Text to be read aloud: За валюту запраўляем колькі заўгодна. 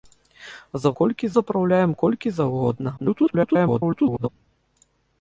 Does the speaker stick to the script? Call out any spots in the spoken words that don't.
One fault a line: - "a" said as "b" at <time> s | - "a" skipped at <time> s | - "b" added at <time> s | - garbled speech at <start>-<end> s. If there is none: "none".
- "валюту" said as "колькі" at 1.0 s
- garbled speech at 3.0-4.3 s